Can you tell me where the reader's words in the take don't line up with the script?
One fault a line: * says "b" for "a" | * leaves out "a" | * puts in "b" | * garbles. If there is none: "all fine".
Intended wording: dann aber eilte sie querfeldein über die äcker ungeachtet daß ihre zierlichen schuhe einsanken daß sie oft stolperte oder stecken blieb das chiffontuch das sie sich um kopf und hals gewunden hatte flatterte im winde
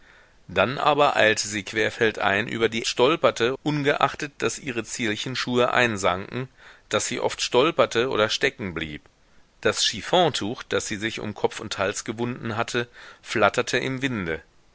* says "stolperte" for "äcker"